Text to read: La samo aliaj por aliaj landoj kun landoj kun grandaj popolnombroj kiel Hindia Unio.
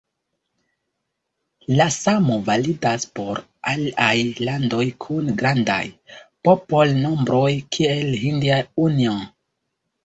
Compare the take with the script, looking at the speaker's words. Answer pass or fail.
fail